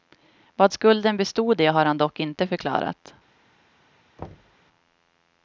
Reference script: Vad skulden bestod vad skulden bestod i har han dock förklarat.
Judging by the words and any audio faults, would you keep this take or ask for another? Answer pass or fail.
fail